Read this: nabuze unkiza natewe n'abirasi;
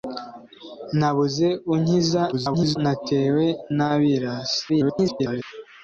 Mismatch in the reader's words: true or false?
true